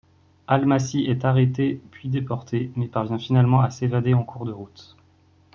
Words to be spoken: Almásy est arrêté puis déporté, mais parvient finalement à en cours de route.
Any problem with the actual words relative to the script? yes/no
yes